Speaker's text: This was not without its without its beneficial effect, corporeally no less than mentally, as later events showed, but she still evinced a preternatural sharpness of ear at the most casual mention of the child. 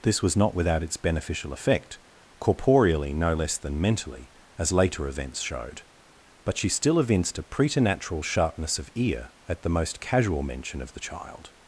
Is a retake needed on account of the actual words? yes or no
yes